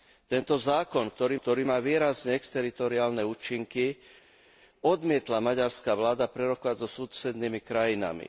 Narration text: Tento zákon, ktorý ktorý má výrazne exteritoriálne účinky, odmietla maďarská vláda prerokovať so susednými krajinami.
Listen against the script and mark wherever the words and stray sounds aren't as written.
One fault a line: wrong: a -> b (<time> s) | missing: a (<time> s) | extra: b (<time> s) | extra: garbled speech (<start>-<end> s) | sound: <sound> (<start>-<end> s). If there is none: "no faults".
no faults